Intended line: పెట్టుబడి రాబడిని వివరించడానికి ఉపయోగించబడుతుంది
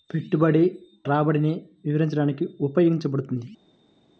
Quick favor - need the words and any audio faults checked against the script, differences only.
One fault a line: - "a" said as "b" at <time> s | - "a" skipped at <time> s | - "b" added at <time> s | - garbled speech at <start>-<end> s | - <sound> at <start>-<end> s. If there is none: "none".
none